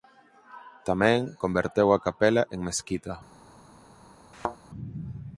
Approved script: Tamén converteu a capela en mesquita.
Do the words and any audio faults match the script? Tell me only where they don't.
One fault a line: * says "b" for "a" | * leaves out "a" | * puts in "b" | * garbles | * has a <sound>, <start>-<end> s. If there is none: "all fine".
* has a thud, 4.3-4.6 s